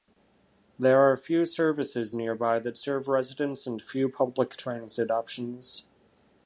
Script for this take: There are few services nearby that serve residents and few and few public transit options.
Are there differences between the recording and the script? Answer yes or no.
yes